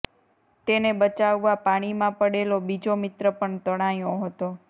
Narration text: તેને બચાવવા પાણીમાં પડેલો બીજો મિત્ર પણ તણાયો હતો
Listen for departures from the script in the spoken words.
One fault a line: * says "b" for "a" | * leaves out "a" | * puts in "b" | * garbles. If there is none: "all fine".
all fine